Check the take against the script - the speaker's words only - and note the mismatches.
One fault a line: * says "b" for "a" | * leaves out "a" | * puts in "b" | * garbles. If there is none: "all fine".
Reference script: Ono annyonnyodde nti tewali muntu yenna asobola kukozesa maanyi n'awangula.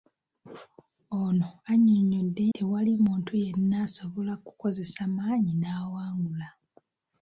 * leaves out "nti"